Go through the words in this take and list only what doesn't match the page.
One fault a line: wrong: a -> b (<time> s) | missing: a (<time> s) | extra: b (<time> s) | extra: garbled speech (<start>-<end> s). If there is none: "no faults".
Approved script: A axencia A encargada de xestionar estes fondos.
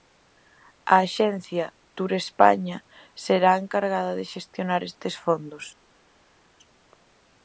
extra: Turespaña será (2.0 s)